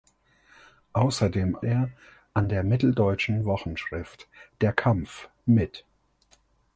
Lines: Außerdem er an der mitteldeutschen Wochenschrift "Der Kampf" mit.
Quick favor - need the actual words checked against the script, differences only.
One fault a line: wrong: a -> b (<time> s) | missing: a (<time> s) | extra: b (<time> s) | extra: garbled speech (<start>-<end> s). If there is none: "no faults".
no faults